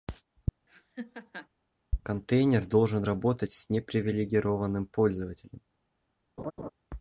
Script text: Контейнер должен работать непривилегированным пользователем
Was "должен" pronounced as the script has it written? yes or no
yes